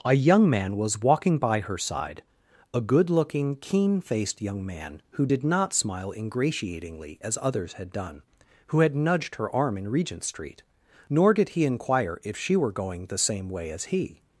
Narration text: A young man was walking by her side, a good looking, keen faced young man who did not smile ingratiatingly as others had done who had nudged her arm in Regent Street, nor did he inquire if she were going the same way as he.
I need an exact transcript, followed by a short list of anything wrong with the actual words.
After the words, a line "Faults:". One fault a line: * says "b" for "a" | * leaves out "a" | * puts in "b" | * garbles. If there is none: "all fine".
A young man was walking by her side, a good looking, keen faced young man who did not smile ingratiatingly as others had done who had nudged her arm in Regent Street, nor did he inquire if she were going the same way as he.
Faults:
all fine